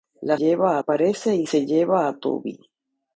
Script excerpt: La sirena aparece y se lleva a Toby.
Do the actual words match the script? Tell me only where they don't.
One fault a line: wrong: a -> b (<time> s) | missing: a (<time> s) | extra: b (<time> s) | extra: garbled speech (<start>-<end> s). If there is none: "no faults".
wrong: sirena -> lleva (0.4 s)